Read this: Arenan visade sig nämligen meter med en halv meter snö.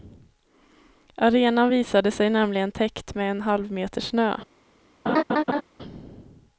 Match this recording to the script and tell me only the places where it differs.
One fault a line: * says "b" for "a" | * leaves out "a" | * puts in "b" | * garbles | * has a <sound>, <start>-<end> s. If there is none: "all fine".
* says "täckt" for "meter"
* has a laugh, 5.1-5.6 s